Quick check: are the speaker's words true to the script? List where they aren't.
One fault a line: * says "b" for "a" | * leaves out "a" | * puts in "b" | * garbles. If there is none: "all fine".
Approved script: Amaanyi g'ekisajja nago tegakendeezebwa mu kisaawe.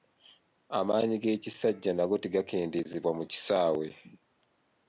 all fine